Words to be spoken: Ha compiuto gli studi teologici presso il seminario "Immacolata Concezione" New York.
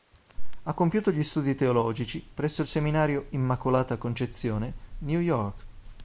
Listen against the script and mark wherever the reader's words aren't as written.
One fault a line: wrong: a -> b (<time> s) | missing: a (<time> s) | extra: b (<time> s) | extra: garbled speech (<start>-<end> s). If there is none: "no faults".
no faults